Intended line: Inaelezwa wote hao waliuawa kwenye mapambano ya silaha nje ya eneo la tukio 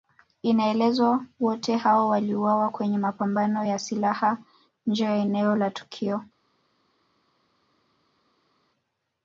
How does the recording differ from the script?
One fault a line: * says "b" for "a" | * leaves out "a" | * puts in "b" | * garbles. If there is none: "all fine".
all fine